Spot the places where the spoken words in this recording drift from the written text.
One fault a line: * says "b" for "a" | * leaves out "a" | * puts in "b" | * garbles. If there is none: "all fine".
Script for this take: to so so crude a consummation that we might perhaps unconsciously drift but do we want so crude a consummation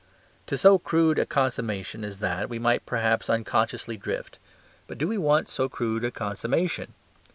* leaves out "so"
* puts in "as"